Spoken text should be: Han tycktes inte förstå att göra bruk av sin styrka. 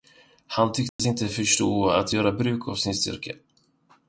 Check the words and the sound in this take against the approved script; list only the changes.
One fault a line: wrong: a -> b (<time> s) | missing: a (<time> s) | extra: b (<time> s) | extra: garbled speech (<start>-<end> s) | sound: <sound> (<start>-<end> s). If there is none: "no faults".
sound: dropout (0.9-1.0 s)